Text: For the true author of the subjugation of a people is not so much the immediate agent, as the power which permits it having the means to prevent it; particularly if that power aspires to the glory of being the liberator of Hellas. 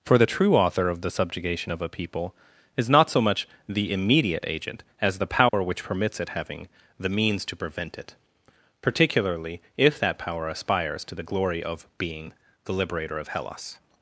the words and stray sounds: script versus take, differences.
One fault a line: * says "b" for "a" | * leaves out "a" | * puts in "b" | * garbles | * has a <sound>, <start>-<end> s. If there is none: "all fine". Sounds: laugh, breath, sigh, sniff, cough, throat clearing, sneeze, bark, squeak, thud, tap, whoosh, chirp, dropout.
* has a dropout, 5.5-5.5 s